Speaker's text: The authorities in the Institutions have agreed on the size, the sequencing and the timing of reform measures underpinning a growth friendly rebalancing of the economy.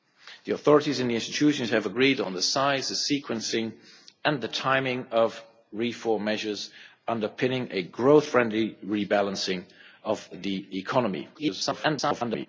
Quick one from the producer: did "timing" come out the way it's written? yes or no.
yes